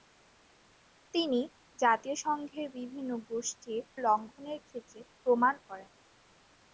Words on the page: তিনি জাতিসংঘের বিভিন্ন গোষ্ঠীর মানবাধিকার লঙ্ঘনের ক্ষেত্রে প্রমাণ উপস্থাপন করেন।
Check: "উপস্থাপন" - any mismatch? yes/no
yes